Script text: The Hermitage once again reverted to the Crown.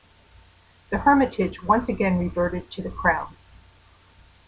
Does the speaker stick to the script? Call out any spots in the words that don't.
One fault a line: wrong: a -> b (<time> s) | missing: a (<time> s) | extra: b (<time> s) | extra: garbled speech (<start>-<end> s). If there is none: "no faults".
no faults